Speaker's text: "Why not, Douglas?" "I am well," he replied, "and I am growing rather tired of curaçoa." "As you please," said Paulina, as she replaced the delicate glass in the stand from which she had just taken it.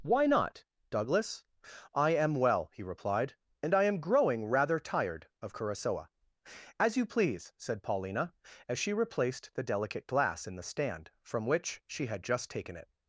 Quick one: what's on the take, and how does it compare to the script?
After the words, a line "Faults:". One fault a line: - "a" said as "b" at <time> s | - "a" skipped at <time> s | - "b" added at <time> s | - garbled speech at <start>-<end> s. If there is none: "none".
"Why not, Douglas?" "I am well," he replied, "and I am growing rather tired of curaçoa." "As you please," said Paulina, as she replaced the delicate glass in the stand from which she had just taken it.
Faults:
none